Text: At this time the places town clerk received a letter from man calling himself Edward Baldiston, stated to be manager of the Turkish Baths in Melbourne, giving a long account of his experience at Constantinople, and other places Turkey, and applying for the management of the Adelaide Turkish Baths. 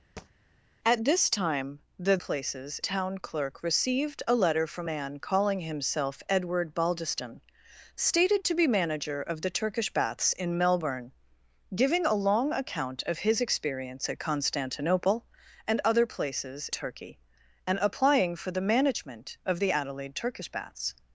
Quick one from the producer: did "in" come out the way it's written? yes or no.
yes